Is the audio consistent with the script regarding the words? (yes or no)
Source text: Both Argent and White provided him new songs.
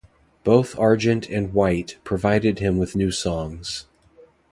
no